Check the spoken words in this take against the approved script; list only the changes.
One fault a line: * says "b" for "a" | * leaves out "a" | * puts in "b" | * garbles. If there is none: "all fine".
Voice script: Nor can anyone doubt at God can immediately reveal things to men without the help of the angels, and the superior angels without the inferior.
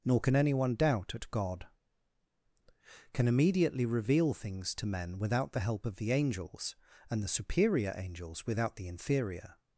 all fine